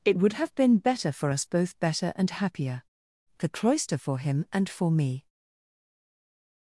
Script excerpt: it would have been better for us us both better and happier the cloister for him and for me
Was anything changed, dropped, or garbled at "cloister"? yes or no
no